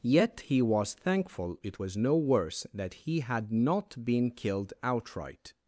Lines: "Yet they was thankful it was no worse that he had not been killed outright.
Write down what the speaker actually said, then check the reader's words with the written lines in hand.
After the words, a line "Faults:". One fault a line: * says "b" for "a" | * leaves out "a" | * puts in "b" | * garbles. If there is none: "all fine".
"Yet he was thankful it was no worse that he had not been killed outright.
Faults:
* says "he" for "they"